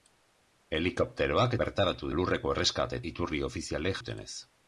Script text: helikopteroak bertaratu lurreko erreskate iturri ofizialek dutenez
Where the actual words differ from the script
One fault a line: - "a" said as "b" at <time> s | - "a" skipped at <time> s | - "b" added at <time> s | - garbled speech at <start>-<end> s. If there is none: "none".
none